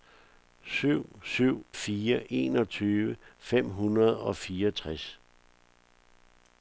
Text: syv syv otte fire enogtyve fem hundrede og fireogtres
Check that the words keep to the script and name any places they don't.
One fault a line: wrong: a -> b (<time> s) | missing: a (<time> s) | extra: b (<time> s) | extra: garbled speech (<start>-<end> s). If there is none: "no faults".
missing: otte (1.6 s)